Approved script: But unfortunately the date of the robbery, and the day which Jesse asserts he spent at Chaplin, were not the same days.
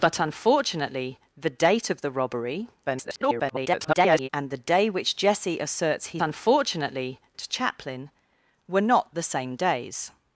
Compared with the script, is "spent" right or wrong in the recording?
wrong